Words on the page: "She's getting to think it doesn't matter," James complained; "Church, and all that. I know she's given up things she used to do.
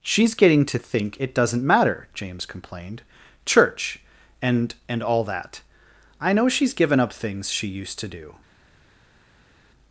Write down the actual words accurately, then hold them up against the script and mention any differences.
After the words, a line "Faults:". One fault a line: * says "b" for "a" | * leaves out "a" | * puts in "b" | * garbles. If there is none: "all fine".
"She's getting to think it doesn't matter," James complained; "Church, and and all that. I know she's given up things she used to do.
Faults:
* puts in "and"